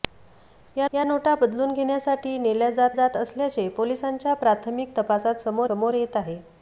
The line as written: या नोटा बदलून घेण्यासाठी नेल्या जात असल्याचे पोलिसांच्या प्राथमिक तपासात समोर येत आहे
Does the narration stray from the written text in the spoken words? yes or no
yes